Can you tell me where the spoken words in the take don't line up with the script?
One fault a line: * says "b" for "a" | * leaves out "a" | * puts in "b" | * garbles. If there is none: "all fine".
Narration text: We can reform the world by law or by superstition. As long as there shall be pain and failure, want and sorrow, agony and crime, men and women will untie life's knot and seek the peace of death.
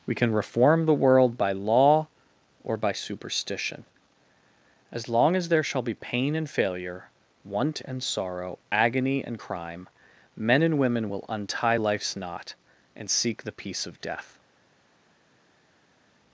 all fine